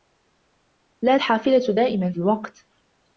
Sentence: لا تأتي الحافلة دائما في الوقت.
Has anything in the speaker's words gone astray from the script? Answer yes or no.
yes